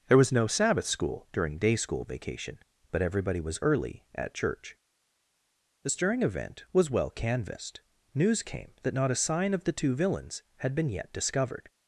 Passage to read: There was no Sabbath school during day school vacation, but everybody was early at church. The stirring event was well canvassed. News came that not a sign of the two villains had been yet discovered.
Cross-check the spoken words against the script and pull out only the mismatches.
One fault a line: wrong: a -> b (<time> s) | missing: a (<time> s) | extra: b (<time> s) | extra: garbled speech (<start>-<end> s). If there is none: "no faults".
no faults